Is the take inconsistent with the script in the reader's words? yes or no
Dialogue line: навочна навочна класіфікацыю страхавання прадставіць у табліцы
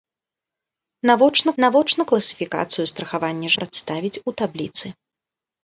no